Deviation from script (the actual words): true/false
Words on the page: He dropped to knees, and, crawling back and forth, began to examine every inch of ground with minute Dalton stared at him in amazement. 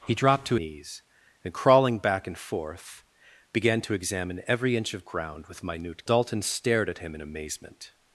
false